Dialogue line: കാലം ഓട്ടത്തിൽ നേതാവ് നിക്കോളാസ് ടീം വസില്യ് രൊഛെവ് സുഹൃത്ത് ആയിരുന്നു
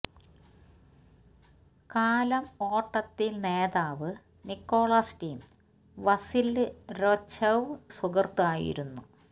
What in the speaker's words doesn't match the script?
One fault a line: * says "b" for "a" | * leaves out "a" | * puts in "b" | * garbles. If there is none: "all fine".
all fine